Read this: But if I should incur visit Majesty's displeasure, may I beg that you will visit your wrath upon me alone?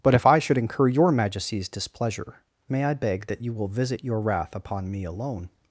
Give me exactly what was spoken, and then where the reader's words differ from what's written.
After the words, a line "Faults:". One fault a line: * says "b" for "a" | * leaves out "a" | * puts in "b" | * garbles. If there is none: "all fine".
But if I should incur your Majesty's displeasure, may I beg that you will visit your wrath upon me alone?
Faults:
* says "your" for "visit"